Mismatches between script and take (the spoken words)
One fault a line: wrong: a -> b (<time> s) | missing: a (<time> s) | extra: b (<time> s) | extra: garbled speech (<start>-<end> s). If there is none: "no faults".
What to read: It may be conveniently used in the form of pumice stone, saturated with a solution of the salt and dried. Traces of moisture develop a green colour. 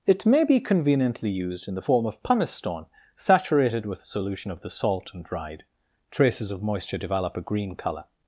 no faults